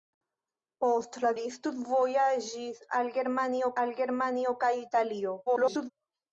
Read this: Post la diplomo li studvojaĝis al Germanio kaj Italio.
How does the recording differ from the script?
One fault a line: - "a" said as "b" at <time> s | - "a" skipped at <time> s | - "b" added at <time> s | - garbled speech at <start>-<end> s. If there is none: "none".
- "diplomo" skipped at 1.3 s
- "al Germanio" added at 3.8 s
- garbled speech at 5.5-5.9 s